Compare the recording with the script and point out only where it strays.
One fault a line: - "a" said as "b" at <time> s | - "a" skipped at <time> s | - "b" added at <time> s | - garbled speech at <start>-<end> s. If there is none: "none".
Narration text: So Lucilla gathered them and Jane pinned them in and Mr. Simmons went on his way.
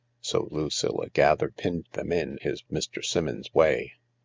- "them and Jane" skipped at 1.5 s
- "and" said as "his" at 2.4 s
- "went on his" skipped at 3.5 s